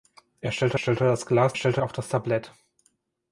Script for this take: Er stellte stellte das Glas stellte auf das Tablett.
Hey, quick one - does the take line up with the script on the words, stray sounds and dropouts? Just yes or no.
yes